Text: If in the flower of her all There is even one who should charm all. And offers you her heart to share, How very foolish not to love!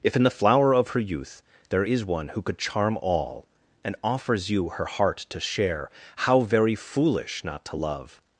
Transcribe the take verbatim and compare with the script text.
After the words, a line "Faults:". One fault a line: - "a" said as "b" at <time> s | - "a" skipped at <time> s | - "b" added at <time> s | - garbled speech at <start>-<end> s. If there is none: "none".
If in the flower of her youth There is one who could charm all. And offers you her heart to share, How very foolish not to love!
Faults:
- "all" said as "youth" at 1.0 s
- "even" skipped at 2.0 s
- "should" said as "could" at 2.4 s